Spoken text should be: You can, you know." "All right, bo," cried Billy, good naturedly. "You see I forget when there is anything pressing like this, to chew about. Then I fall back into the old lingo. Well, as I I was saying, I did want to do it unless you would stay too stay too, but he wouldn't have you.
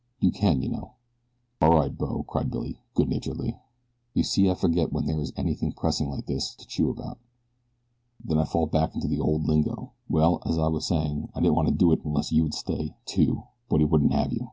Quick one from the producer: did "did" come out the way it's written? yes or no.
no